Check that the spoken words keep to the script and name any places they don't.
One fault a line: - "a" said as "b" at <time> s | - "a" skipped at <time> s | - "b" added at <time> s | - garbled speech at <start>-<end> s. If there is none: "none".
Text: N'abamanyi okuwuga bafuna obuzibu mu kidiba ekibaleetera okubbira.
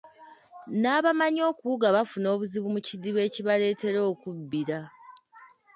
none